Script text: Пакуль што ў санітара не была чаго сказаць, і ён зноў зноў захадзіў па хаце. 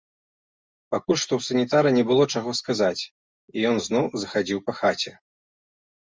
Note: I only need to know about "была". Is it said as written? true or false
false